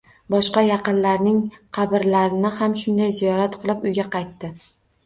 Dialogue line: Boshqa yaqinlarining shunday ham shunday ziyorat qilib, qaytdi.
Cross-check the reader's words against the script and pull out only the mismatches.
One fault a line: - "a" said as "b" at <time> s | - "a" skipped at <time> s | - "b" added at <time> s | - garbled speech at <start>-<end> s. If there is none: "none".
- "shunday" said as "qabrlarini" at 1.8 s
- "uyga" added at 3.9 s